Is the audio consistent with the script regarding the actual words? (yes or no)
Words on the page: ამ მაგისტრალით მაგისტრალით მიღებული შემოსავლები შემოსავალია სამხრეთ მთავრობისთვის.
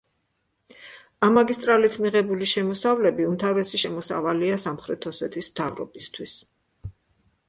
no